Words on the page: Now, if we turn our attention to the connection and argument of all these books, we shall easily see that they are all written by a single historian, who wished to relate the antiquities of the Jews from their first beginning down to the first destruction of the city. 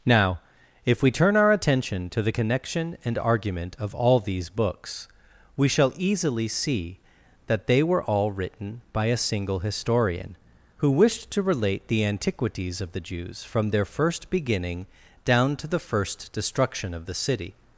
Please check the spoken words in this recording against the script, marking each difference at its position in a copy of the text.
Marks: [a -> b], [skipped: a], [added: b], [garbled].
Now, if we turn our attention to the connection and argument of all these books, we shall easily see that they [are -> were] all written by a single historian, who wished to relate the antiquities of the Jews from their first beginning down to the first destruction of the city.